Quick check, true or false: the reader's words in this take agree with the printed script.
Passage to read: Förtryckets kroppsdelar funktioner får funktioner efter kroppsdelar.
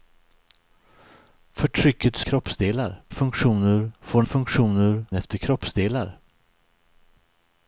true